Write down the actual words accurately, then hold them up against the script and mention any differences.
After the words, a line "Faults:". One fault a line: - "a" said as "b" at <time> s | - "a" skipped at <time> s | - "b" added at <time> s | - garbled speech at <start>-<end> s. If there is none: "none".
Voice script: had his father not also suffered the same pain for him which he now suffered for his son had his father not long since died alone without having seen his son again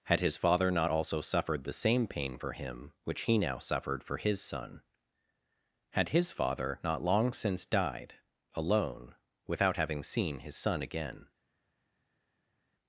had his father not also suffered the same pain for him which he now suffered for his son had his father not long since died alone without having seen his son again
Faults:
none